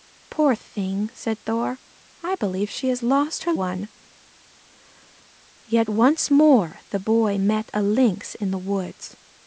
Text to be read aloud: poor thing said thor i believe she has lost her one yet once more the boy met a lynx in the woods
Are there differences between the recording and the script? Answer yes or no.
no